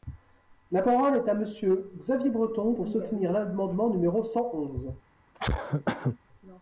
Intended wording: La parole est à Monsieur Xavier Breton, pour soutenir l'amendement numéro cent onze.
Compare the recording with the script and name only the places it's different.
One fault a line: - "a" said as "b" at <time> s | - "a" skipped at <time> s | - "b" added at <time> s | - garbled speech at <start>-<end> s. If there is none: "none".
none